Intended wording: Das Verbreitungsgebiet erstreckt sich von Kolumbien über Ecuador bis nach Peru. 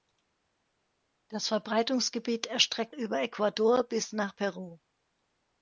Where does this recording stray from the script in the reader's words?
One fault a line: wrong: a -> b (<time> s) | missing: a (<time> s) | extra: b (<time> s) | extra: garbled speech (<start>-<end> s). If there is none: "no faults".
missing: sich von Kolumbien (3.0 s)